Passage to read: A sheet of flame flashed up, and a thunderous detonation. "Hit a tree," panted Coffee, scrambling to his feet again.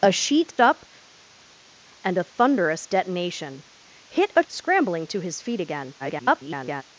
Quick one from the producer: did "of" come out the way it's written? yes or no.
no